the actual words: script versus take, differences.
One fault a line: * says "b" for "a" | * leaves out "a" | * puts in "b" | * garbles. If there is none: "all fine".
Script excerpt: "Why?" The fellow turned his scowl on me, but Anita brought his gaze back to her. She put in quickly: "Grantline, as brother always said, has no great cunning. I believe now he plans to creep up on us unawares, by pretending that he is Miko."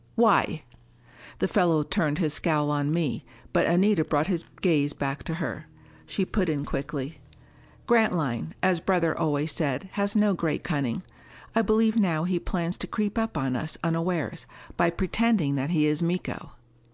all fine